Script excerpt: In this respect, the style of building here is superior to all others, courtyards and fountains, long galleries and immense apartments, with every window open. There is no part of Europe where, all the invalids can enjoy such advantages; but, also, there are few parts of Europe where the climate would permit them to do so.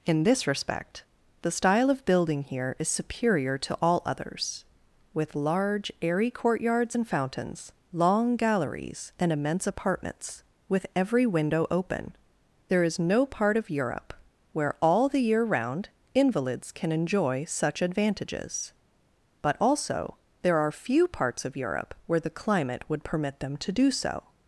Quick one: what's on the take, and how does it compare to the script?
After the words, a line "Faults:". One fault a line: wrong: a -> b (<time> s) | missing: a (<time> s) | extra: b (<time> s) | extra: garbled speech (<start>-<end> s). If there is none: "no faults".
In this respect, the style of building here is superior to all others, with large airy courtyards and fountains, long galleries and immense apartments, with every window open. There is no part of Europe where, all the year round, invalids can enjoy such advantages; but, also, there are few parts of Europe where the climate would permit them to do so.
Faults:
extra: with large airy (5.1 s)
extra: year round (15.2 s)